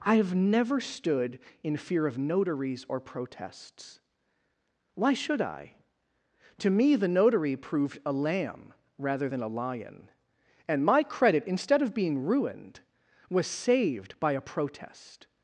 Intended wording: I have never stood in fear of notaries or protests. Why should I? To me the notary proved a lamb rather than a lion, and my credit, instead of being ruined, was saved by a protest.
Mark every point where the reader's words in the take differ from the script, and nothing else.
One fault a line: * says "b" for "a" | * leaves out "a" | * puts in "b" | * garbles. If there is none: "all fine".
all fine